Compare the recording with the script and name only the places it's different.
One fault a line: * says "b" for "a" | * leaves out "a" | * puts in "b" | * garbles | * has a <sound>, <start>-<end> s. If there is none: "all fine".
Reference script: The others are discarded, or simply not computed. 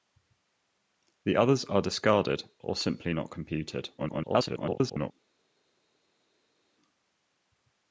* garbles